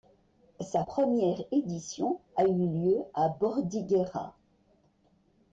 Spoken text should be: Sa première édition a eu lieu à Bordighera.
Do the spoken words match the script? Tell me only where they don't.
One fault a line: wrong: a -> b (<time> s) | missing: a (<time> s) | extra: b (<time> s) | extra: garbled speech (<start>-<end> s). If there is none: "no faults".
no faults